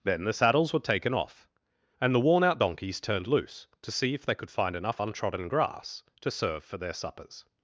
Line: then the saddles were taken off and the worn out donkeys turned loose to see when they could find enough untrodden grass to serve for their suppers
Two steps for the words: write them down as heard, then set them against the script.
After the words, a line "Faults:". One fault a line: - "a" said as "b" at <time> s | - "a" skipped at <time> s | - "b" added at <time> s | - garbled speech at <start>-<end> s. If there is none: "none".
then the saddles were taken off and the worn out donkeys turned loose to see if they could find enough untrodden grass to serve for their suppers
Faults:
- "when" said as "if" at 4.1 s